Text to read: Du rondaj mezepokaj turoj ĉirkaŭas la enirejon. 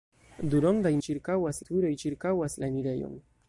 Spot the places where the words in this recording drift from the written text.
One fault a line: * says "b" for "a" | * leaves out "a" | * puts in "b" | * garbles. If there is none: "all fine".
* says "ĉirkaŭas" for "mezepokaj"